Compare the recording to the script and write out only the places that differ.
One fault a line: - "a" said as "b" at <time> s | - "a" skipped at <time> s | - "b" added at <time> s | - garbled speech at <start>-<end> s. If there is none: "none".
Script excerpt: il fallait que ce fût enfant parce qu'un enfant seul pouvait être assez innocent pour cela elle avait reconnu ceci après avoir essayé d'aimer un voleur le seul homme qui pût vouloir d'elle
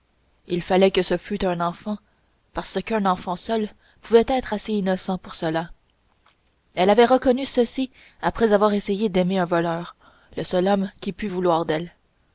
- "un" added at 1.4 s